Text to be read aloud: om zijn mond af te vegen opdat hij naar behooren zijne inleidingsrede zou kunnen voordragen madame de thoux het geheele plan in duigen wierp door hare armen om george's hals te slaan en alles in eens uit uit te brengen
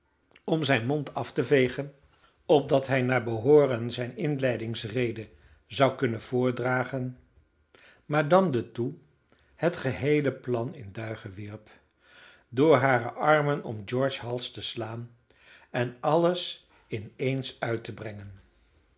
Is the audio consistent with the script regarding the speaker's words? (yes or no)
no